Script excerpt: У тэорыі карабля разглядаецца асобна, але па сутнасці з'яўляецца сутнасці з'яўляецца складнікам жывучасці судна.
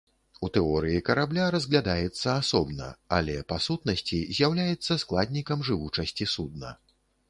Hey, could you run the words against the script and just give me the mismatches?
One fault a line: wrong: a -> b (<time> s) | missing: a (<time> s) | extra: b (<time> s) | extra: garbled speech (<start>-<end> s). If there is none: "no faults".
missing: сутнасці з'яўляецца (5.0 s)